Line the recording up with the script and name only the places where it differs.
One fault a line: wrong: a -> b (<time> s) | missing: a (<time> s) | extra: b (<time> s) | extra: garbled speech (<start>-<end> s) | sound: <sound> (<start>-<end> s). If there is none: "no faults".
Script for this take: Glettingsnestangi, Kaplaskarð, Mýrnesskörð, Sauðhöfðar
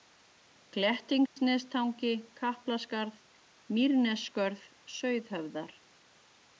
sound: dropout (1.3-1.4 s)